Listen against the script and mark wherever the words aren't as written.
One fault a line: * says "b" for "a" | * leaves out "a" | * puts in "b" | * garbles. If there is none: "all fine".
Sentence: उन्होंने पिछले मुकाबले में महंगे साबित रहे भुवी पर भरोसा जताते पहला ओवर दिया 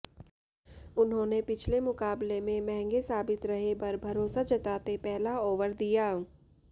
* leaves out "भुवी"